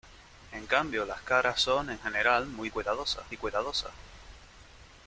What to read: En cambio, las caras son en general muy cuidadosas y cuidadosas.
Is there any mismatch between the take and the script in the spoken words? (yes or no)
no